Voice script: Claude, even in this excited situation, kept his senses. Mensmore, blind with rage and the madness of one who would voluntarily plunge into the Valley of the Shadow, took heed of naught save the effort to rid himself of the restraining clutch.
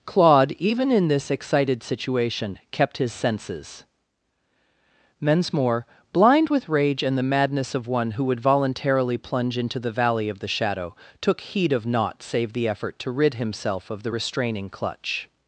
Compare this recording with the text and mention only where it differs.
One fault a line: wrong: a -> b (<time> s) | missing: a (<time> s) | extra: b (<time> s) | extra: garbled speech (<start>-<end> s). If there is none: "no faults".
no faults